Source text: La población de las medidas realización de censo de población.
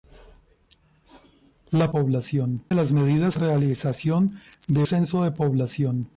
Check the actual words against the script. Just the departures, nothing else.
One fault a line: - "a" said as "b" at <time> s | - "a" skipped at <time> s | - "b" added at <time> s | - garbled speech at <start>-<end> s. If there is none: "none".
none